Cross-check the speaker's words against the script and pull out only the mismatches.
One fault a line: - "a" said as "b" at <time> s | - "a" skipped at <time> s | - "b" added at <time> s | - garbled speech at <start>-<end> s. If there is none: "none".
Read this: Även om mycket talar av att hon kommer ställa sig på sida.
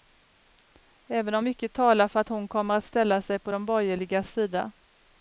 - "av" said as "för" at 2.1 s
- "att" added at 2.7 s
- "de borgerligas" added at 3.5 s